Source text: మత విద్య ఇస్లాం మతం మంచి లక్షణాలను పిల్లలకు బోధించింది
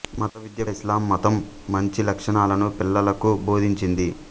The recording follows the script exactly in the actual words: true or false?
true